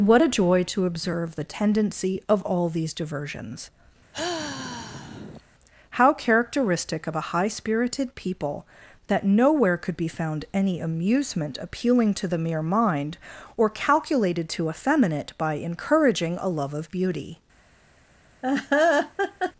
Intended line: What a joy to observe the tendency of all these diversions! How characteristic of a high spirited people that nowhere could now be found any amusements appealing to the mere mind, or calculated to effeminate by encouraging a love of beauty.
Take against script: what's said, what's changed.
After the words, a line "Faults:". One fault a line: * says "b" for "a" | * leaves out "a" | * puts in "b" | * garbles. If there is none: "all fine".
What a joy to observe the tendency of all these diversions! How characteristic of a high spirited people that nowhere could be found any amusement appealing to the mere mind, or calculated to effeminate by encouraging a love of beauty.
Faults:
* leaves out "now"
* says "amusement" for "amusements"